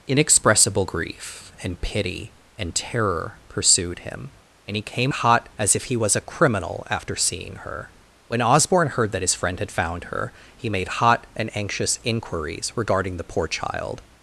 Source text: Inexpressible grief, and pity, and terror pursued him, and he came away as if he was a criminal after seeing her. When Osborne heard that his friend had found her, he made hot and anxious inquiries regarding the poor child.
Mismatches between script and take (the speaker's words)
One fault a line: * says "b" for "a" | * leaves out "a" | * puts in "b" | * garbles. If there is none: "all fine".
* says "hot" for "away"